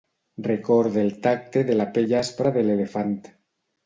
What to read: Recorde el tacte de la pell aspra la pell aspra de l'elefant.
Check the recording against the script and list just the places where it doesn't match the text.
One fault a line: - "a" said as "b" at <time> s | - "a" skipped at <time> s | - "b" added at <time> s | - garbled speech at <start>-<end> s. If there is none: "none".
- "la pell aspra" skipped at 2.5 s